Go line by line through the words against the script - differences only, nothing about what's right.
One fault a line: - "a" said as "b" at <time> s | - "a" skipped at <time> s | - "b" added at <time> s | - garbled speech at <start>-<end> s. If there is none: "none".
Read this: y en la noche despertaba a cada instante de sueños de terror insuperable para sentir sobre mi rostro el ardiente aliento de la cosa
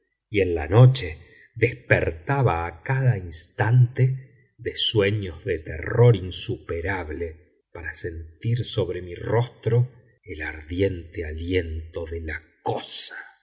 none